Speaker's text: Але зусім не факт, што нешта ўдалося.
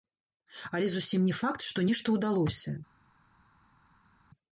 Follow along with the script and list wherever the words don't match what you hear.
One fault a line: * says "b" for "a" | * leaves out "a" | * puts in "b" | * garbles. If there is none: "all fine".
all fine